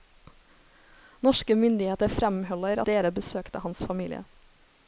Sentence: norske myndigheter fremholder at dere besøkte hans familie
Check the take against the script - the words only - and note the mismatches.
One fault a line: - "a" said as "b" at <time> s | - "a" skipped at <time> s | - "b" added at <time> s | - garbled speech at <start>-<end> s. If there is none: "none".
- "at" skipped at 2.8 s